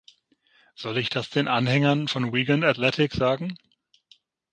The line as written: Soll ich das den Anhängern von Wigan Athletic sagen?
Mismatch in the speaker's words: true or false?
false